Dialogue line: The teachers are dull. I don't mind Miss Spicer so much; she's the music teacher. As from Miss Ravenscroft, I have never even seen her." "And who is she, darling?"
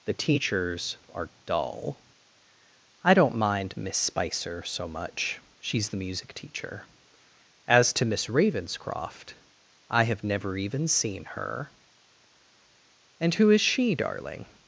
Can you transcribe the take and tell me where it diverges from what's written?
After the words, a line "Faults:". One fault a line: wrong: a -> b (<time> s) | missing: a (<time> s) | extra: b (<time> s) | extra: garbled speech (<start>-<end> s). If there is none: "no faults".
The teachers are dull. I don't mind Miss Spicer so much; she's the music teacher. As to Miss Ravenscroft, I have never even seen her." "And who is she, darling?"
Faults:
wrong: from -> to (7.9 s)